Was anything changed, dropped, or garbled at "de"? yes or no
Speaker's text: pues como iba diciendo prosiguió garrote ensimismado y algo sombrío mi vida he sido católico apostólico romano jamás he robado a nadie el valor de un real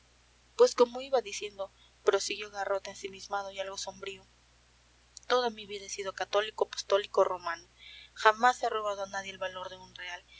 no